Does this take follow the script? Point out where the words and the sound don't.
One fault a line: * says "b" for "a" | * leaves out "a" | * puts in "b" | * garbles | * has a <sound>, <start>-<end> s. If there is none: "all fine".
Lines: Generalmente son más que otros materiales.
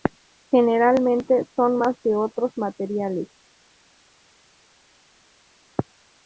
all fine